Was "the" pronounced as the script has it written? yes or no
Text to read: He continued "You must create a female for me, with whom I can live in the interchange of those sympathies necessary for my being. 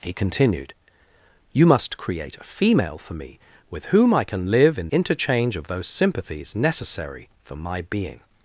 no